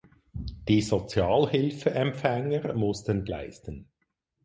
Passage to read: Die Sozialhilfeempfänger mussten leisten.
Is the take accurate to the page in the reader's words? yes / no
yes